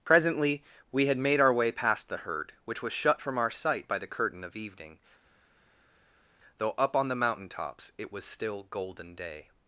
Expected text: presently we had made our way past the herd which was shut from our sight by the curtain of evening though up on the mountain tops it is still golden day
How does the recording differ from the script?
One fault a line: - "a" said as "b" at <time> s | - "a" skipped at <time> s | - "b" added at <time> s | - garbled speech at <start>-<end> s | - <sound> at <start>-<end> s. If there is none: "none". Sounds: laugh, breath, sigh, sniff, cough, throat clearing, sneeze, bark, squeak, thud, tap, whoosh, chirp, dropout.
- "is" said as "was" at 8.1 s